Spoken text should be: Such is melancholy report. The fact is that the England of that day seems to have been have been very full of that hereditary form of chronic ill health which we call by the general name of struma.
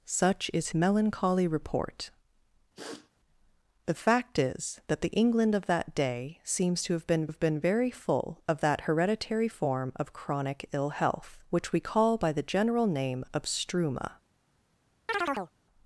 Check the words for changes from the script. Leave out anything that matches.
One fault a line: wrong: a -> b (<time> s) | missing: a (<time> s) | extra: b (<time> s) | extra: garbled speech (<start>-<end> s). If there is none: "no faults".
no faults